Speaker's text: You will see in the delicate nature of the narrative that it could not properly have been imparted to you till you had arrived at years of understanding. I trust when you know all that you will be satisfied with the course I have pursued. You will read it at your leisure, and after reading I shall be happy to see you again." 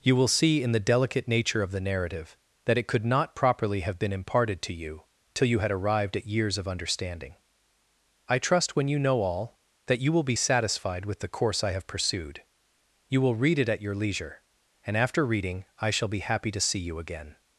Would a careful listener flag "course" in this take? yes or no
no